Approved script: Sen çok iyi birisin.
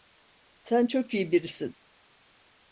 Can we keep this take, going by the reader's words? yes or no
yes